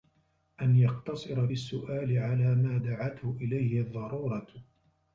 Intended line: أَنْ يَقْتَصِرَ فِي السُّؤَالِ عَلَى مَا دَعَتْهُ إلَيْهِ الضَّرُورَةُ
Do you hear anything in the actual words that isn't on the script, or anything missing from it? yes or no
yes